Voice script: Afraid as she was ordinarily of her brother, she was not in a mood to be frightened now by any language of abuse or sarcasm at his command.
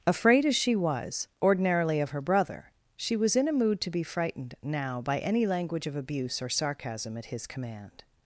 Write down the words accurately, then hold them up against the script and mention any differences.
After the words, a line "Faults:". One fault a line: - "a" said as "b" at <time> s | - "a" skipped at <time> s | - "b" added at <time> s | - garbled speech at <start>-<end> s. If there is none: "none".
Afraid as she was ordinarily of her brother, she was in a mood to be frightened now by any language of abuse or sarcasm at his command.
Faults:
- "not" skipped at 3.4 s